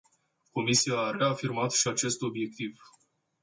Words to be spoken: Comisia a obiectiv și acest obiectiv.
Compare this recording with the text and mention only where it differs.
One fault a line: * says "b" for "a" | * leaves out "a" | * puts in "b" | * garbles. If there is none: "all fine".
* says "reafirmat" for "obiectiv"